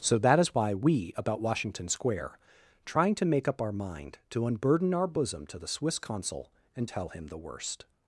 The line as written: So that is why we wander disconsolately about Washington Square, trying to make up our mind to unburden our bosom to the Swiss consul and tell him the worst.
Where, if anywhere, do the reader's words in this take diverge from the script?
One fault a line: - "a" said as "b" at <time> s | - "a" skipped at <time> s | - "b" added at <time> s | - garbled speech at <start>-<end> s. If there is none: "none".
- "wander disconsolately" skipped at 1.1 s